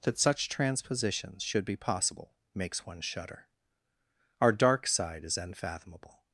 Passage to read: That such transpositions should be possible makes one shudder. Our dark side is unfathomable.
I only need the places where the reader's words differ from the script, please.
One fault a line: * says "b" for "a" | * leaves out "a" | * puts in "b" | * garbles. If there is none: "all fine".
all fine